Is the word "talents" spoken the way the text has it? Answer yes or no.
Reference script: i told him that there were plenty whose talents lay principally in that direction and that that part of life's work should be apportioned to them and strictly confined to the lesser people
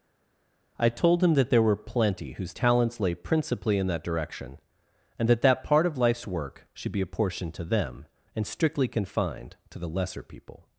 yes